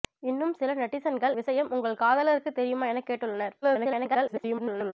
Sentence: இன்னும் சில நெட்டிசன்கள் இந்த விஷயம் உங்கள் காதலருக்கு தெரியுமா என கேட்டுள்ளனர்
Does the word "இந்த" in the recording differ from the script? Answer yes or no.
yes